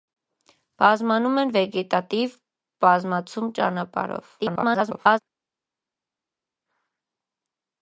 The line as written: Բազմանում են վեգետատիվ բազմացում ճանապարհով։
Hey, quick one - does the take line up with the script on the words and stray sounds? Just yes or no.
no